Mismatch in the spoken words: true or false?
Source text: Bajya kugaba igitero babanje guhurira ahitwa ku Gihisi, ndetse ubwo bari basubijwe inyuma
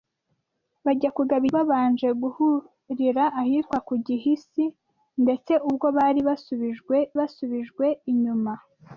true